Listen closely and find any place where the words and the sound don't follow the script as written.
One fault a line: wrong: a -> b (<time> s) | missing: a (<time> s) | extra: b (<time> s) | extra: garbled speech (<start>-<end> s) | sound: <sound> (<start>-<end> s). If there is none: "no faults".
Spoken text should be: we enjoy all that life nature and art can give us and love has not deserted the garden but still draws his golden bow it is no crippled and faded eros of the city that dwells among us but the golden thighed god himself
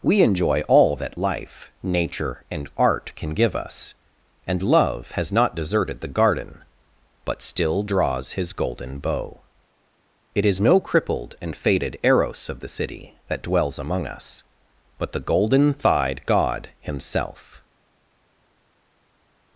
no faults